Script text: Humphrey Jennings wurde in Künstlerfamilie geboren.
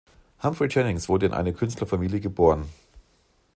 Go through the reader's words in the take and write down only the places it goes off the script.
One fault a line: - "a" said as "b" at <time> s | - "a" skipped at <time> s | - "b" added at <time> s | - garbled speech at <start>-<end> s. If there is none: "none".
- "eine" added at 1.3 s